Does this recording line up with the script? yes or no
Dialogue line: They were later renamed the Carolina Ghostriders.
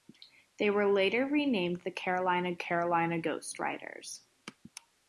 no